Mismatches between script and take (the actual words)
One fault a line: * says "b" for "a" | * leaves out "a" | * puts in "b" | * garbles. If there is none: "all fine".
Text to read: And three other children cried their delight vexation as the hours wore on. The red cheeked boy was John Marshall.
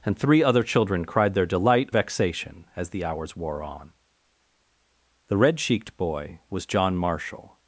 all fine